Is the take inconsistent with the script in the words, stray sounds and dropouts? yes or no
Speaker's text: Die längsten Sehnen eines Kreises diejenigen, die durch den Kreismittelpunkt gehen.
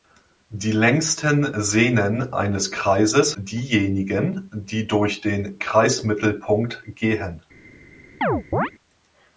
yes